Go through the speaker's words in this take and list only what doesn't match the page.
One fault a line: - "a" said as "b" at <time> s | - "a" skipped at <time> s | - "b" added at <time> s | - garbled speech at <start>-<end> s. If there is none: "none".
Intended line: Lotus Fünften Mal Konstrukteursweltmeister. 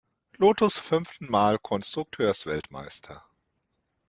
none